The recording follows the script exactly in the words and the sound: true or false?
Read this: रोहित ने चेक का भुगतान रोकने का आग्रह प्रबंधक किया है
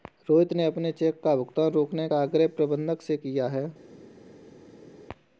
false